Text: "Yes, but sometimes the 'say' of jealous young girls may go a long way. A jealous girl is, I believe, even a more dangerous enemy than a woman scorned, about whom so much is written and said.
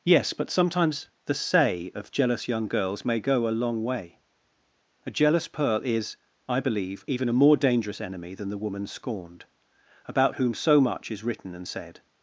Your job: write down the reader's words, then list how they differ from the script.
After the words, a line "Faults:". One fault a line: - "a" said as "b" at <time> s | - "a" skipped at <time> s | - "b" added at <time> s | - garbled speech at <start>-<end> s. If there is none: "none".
"Yes, but sometimes the 'say' of jealous young girls may go a long way. A jealous pearl is, I believe, even a more dangerous enemy than the woman scorned, about whom so much is written and said.
Faults:
- "girl" said as "pearl" at 5.5 s
- "a" said as "the" at 8.5 s